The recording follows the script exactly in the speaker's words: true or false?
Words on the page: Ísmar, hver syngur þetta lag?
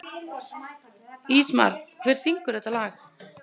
true